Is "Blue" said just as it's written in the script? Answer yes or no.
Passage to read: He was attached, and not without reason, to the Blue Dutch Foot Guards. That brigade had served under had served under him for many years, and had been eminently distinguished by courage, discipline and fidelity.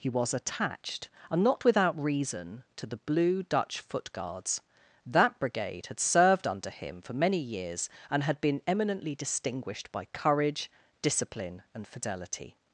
yes